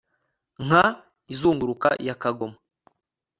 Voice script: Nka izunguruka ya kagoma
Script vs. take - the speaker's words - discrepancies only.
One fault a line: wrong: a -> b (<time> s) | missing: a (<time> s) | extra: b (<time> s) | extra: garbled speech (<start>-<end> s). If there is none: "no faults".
no faults